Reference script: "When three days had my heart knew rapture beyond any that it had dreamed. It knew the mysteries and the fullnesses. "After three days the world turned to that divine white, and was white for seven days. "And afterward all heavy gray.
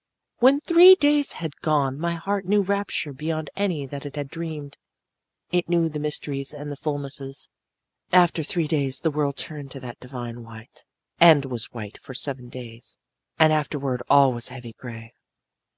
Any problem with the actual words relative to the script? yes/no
yes